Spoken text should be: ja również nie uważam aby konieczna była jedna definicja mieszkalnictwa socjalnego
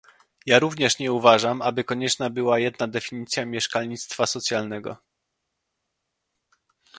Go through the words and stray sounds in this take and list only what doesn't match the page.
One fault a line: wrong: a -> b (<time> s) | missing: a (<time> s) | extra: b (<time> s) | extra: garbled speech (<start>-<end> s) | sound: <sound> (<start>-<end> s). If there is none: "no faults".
no faults